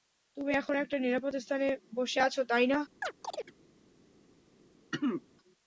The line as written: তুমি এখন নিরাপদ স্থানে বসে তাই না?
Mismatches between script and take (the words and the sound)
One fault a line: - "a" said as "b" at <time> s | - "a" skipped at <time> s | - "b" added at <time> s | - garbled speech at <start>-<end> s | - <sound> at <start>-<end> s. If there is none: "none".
- "একটা" added at 0.8 s
- "আছো" added at 2.2 s
- chirp at 3.0-3.5 s
- throat clearing at 4.9-5.2 s